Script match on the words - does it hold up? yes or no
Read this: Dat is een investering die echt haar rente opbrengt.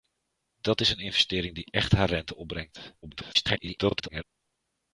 no